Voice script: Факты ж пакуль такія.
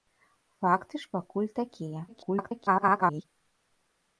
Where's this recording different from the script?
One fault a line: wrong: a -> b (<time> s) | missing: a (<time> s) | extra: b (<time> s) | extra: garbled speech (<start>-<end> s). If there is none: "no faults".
extra: garbled speech (2.1-3.2 s)